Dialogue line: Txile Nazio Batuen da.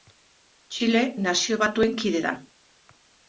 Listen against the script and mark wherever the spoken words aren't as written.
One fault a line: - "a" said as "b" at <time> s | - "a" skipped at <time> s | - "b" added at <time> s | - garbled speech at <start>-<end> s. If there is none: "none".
- "kide" added at 2.0 s